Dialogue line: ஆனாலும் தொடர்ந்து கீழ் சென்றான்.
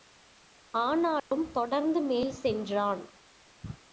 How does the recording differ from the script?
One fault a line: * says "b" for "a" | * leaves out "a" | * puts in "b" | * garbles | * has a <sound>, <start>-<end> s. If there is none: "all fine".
* has a dropout, 1.2-1.3 s
* says "மேல்" for "கீழ்"